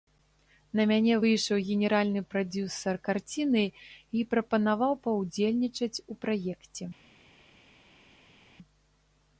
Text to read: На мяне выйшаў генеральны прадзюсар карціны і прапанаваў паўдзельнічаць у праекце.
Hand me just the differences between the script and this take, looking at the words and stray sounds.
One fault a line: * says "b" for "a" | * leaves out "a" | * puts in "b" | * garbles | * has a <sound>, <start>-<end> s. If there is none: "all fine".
all fine